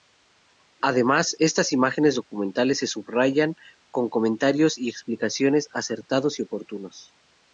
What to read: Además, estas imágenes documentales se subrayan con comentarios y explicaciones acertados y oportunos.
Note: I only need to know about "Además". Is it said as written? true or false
true